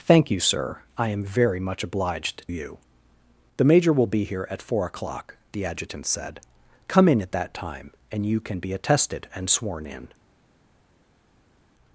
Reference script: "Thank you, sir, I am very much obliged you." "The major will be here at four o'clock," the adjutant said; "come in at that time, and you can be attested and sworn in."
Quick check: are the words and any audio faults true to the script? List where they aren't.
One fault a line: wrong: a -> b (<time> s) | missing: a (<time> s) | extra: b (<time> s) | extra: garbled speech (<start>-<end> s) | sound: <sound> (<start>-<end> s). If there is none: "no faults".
no faults